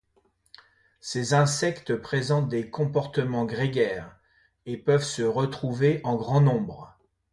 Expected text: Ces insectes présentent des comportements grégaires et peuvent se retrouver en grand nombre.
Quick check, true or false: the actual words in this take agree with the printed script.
true